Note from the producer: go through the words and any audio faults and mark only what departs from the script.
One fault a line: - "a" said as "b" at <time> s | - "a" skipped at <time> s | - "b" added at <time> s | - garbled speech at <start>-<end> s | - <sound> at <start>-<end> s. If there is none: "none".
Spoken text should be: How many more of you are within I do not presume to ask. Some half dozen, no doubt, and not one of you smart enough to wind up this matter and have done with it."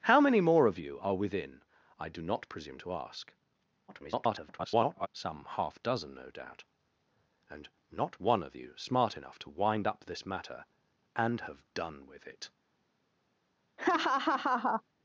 - garbled speech at 3.9-5.1 s
- laugh at 13.8-14.8 s